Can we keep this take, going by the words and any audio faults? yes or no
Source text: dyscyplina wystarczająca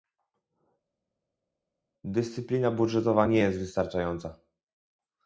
no